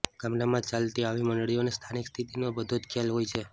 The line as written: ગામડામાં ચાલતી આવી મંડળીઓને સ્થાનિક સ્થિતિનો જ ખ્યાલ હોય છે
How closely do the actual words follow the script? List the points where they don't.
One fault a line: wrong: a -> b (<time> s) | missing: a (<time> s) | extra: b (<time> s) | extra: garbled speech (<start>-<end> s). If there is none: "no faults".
extra: બધો (2.6 s)